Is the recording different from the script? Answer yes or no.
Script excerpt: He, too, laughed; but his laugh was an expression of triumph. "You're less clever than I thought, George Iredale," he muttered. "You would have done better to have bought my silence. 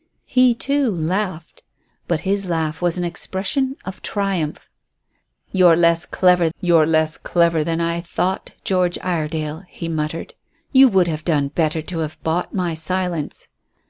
yes